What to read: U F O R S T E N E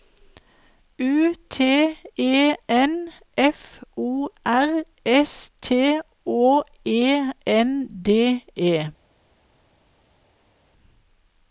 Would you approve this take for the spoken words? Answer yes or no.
no